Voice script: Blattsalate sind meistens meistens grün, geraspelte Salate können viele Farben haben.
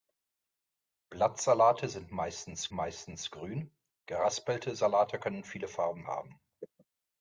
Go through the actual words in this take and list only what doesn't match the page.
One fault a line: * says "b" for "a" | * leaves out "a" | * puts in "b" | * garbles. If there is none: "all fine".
all fine